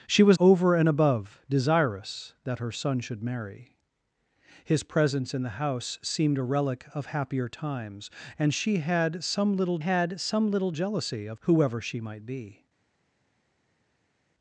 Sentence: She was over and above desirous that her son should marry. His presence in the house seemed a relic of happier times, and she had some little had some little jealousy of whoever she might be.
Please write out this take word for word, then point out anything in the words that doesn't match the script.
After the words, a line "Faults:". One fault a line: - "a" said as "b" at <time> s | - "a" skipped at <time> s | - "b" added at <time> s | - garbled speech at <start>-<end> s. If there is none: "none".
She was over and above desirous that her son should marry. His presence in the house seemed a relic of happier times, and she had some little had some little jealousy of whoever she might be.
Faults:
none